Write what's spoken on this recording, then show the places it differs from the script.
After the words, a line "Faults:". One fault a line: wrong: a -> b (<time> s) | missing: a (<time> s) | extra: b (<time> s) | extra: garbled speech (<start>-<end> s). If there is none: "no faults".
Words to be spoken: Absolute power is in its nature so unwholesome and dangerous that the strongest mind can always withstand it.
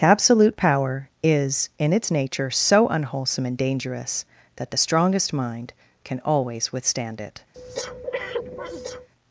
Absolute power is in its nature so unwholesome and dangerous that the strongest mind can always withstand it.
Faults:
no faults